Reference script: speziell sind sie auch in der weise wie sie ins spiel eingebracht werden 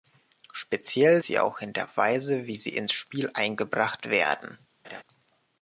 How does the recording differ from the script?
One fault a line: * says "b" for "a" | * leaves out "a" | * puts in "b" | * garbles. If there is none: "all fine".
* leaves out "sind"